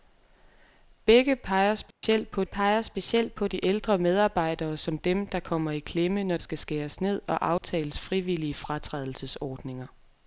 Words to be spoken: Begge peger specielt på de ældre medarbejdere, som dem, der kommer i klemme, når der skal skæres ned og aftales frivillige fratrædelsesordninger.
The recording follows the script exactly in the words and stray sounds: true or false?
false